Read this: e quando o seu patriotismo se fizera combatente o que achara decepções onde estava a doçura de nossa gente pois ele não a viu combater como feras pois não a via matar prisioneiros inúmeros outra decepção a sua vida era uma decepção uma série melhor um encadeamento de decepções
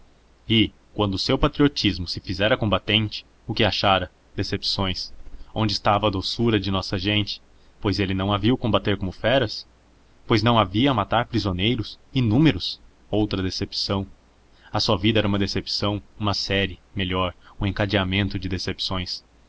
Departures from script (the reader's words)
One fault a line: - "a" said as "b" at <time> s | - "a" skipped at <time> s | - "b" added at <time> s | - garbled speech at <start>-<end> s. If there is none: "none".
none